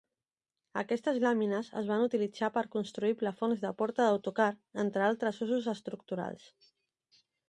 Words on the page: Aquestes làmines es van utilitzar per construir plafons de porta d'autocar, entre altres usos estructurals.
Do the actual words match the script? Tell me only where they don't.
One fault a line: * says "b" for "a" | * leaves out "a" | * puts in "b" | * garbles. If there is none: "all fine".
all fine